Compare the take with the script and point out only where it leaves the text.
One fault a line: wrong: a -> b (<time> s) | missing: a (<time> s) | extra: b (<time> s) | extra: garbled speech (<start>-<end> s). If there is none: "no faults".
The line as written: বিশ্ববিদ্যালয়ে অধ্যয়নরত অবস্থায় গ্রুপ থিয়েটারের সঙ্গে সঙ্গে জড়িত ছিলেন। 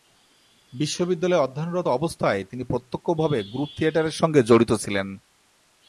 extra: তিনি প্রত্যক্ষভাবে (2.4 s)
missing: সঙ্গে (4.4 s)